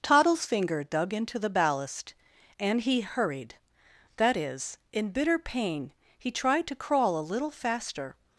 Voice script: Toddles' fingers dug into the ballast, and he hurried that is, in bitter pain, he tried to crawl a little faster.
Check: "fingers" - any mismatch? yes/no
yes